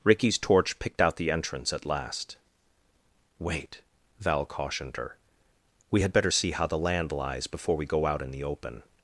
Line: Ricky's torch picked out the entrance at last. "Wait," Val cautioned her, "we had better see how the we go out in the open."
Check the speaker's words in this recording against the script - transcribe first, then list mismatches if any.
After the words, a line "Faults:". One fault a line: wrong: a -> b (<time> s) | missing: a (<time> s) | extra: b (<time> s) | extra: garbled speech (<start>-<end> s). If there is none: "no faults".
Ricky's torch picked out the entrance at last. "Wait," Val cautioned her, "we had better see how the land lies before we go out in the open."
Faults:
extra: land lies before (6.8 s)